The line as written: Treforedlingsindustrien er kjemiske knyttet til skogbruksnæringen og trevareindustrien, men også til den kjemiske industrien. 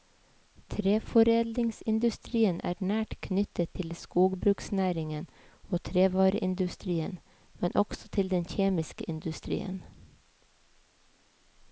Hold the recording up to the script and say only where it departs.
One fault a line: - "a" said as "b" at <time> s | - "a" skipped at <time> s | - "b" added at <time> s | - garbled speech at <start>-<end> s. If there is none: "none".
- "kjemiske" said as "nært" at 2.9 s